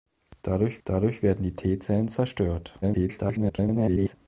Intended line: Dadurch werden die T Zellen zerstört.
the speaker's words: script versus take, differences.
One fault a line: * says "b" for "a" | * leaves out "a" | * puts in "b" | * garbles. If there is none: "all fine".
* puts in "dadurch"
* garbles